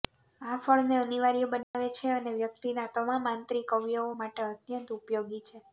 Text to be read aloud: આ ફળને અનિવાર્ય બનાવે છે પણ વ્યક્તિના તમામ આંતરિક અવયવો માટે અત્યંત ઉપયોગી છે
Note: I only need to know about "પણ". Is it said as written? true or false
false